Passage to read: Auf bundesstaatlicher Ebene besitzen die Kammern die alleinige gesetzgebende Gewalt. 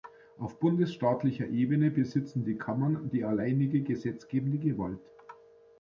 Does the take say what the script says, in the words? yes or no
yes